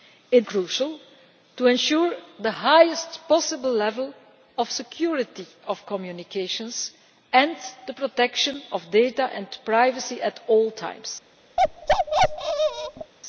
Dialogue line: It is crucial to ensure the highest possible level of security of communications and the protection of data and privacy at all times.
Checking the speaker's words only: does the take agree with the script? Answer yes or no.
no